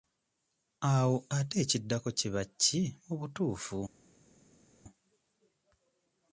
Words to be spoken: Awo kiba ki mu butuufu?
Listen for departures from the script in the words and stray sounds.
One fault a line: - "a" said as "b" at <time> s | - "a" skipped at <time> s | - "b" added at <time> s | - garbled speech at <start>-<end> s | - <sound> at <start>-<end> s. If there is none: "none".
- "ate ekiddako" added at 1.4 s